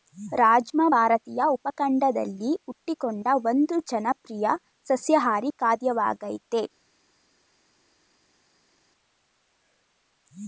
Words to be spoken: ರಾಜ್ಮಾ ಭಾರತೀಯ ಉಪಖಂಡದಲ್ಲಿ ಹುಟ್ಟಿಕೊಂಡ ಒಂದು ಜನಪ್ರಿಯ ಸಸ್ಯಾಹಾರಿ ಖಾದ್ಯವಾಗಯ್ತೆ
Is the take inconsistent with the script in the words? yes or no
no